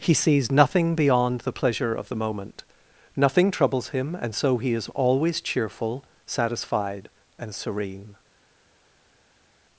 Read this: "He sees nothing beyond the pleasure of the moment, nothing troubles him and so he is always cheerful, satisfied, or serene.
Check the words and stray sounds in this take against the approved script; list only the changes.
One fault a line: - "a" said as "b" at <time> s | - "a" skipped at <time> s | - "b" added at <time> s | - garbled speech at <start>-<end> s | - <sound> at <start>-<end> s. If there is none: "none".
- "or" said as "and" at 7.4 s